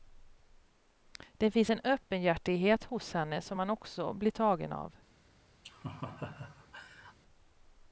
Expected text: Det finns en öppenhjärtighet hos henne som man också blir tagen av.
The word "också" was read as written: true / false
true